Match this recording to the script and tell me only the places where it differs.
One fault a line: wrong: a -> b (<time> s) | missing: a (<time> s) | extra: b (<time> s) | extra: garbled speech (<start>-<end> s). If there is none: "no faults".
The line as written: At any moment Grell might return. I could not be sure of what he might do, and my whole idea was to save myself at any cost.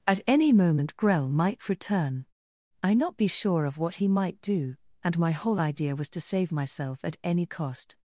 missing: could (2.9 s)